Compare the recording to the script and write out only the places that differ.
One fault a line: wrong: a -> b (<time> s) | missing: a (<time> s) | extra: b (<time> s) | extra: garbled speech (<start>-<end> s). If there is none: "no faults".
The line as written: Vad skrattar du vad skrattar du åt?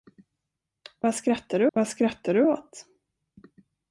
no faults